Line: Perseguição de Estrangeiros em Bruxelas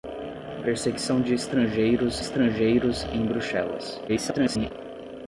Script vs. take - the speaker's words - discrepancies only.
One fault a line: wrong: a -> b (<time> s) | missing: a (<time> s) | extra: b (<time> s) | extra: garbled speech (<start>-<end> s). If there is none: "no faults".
extra: Estrangeiros (2.2 s)
extra: garbled speech (4.1-4.7 s)